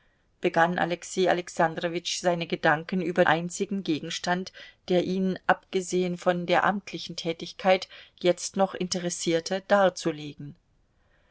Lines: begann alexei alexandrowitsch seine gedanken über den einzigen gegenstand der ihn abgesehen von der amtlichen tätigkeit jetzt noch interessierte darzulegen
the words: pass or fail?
fail